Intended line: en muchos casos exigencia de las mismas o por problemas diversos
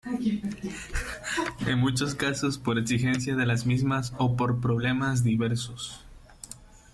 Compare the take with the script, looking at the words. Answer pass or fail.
fail